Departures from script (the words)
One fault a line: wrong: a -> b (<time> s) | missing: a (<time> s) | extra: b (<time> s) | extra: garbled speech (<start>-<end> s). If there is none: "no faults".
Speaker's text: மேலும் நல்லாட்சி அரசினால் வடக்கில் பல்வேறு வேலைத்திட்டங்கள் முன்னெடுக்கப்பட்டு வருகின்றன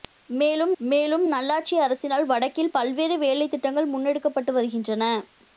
extra: மேலும் (0.8 s)